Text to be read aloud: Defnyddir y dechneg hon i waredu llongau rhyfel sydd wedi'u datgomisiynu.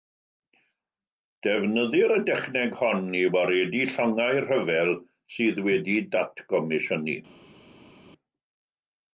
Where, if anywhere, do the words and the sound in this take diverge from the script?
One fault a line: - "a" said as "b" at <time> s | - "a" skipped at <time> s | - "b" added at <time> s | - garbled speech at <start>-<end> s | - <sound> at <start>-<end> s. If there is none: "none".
none